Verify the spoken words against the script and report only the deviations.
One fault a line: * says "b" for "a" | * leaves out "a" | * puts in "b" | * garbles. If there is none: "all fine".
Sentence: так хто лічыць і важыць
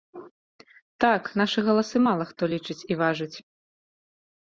* puts in "нашы галасы мала"